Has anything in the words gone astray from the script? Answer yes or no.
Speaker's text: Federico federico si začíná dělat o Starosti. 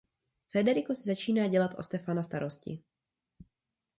yes